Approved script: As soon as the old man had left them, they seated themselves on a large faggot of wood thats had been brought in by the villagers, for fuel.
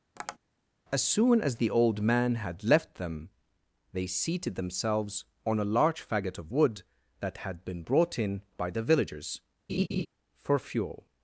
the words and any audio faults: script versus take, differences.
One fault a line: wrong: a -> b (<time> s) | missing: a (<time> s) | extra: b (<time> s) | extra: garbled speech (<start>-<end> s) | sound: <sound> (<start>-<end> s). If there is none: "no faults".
sound: tap (0.2-0.4 s)
wrong: thats -> that (7.2 s)
sound: laugh (9.7-10.1 s)